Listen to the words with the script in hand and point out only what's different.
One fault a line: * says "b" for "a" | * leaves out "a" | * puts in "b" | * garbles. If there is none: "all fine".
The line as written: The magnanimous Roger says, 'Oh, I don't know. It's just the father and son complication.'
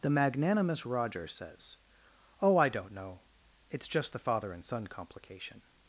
all fine